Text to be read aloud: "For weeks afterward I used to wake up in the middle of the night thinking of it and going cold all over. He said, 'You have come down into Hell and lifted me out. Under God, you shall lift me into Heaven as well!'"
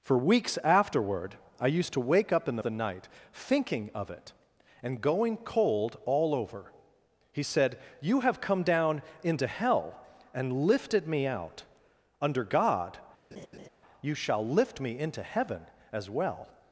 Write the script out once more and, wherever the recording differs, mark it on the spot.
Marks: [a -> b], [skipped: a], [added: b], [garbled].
"For weeks afterward I used to wake up in the [skipped: middle of] the night thinking of it and going cold all over. He said, 'You have come down into Hell and lifted me out. Under God, you shall lift me into Heaven as well!'"